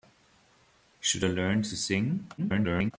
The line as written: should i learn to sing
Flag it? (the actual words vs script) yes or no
yes